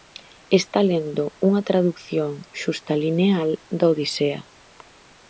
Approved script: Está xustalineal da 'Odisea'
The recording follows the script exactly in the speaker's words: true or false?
false